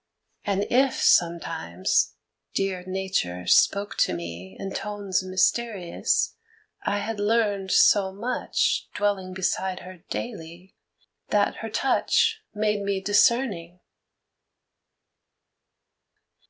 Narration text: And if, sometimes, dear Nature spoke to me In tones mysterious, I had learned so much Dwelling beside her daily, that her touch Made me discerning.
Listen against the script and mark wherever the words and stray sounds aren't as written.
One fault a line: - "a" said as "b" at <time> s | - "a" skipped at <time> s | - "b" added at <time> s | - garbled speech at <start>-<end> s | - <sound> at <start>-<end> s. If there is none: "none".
none